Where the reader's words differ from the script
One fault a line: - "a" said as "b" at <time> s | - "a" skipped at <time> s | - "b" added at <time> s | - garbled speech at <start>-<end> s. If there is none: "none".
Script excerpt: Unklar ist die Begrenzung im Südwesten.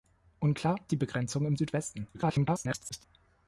- "ist" skipped at 0.8 s
- garbled speech at 2.1-3.0 s